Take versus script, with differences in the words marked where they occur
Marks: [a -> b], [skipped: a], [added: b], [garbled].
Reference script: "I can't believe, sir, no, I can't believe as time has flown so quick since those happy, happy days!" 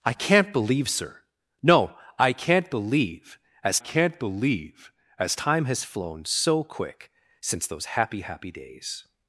"I can't believe, sir, no, I can't believe as [added: can't believe as] time has flown so quick since those happy, happy days!"